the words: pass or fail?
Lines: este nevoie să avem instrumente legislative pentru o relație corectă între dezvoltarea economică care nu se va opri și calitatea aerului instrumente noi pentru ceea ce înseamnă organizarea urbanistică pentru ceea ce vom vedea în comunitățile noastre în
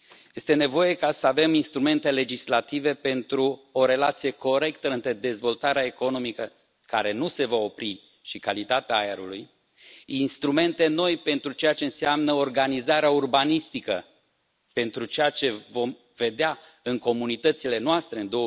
pass